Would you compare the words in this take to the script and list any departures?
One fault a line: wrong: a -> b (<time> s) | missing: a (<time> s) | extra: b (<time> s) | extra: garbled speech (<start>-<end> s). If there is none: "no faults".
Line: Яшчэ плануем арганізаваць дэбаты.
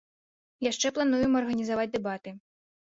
no faults